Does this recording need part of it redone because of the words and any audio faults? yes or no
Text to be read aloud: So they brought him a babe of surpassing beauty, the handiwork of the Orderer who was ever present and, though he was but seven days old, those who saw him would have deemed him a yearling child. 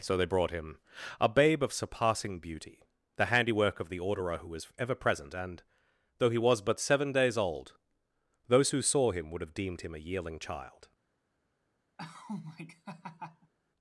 yes